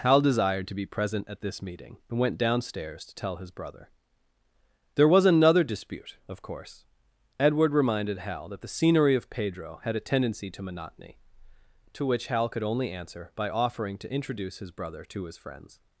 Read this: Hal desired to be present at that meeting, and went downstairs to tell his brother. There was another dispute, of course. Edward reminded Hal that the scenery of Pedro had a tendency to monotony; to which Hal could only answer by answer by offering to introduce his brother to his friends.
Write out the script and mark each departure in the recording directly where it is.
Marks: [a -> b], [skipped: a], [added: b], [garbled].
Hal desired to be present at [that -> this] meeting, and went downstairs to tell his brother. There was another dispute, of course. Edward reminded Hal that the scenery of Pedro had a tendency to monotony; to which Hal could only answer by [skipped: answer by] offering to introduce his brother to his friends.